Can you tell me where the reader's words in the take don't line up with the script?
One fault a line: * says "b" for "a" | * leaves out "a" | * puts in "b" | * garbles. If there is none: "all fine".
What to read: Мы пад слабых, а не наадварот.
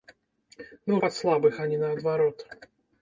all fine